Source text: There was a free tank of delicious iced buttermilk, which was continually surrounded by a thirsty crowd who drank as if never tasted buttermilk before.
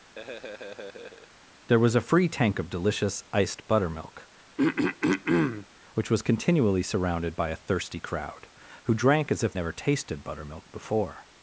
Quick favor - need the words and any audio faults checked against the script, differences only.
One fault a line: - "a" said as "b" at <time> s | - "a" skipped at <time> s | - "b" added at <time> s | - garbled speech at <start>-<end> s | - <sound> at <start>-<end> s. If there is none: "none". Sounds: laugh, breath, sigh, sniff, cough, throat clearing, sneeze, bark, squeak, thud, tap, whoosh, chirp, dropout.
- laugh at 0.2-1.3 s
- throat clearing at 4.6-5.7 s